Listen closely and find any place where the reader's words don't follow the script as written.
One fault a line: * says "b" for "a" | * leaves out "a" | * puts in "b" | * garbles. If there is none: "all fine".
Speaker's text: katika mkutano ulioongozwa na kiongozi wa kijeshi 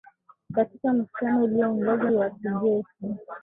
* leaves out "na kiongozi"